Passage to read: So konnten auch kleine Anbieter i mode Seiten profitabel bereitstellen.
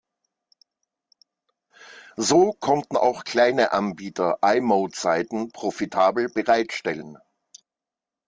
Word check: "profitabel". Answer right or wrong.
right